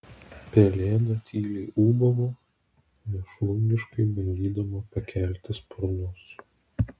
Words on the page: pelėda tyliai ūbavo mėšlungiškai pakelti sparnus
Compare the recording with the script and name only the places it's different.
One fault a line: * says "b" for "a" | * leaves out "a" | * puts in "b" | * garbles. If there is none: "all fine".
* puts in "bandydama"